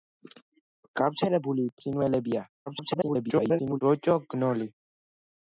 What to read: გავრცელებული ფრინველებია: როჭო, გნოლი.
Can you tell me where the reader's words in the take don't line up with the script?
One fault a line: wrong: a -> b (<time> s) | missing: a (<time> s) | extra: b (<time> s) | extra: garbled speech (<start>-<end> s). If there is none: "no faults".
extra: garbled speech (2.7-3.8 s)